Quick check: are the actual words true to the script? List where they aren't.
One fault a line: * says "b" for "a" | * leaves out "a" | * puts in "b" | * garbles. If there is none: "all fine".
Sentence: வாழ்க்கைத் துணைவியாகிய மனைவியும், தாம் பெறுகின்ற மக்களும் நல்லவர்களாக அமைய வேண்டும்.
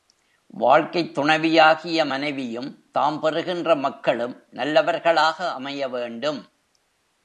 all fine